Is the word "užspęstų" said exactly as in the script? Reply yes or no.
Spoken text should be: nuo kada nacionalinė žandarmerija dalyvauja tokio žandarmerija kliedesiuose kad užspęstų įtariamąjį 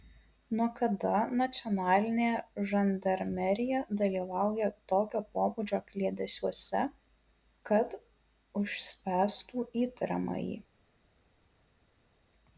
yes